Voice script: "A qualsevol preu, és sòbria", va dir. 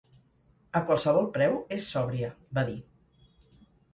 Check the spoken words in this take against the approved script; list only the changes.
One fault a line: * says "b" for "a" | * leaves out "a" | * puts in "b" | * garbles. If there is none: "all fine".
all fine